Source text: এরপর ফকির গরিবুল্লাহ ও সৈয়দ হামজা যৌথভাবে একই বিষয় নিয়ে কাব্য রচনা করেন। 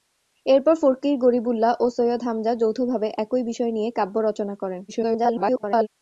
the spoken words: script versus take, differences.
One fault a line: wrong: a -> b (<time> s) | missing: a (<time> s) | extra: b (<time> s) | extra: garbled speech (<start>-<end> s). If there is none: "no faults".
extra: garbled speech (4.9-5.9 s)